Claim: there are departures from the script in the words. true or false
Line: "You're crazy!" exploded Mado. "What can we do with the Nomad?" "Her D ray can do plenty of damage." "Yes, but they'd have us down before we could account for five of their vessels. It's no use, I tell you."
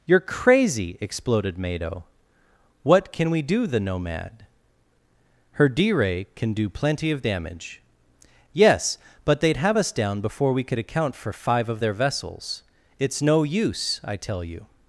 true